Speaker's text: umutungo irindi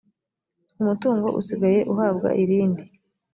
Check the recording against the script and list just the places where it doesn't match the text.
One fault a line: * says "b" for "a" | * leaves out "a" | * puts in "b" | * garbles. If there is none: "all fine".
* puts in "usigaye uhabwa"